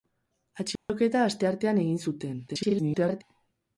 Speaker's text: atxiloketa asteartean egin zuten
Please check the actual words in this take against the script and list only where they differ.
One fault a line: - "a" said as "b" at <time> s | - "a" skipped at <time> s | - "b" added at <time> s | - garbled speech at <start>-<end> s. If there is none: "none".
- garbled speech at 2.5-3.2 s